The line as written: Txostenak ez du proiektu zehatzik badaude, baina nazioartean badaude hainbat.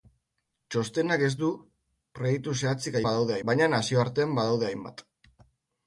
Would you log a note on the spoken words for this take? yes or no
no